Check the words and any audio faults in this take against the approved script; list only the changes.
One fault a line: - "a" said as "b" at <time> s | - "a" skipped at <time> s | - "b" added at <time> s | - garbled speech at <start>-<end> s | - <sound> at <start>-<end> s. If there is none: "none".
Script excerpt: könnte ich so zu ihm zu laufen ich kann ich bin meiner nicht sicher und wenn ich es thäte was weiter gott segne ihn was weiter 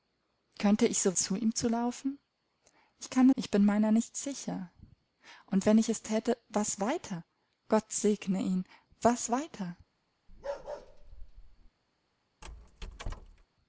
- bark at 10.3-11.7 s
- squeak at 12.4-13.5 s